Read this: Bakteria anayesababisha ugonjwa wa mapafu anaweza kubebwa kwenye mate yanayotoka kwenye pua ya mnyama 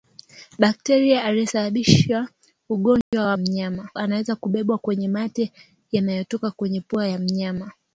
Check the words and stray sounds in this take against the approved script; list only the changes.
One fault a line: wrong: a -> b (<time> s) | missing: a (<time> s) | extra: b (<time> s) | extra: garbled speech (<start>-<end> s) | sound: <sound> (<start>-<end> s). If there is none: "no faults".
sound: dropout (3.0-3.1 s)
wrong: mapafu -> mnyama (3.4 s)